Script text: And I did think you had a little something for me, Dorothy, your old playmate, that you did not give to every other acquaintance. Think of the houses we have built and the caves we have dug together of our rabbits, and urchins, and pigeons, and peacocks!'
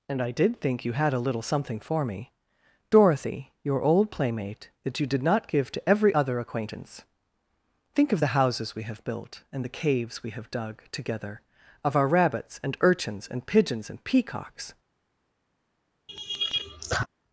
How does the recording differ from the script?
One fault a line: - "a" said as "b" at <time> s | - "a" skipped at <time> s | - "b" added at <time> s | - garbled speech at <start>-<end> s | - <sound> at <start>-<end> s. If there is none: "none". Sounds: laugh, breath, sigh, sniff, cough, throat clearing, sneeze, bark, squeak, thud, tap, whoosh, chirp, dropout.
- laugh at 16.1-17.1 s